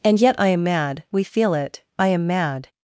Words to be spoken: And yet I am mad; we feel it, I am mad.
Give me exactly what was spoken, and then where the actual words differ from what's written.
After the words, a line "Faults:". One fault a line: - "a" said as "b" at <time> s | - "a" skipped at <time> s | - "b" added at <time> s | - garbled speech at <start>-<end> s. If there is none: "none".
And yet I am mad; we feel it, I am mad.
Faults:
none